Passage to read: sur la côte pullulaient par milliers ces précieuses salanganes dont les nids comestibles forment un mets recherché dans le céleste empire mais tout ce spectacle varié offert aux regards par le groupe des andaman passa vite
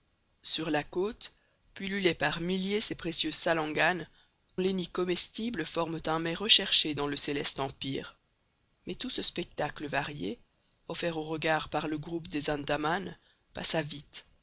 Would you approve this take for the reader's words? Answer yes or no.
no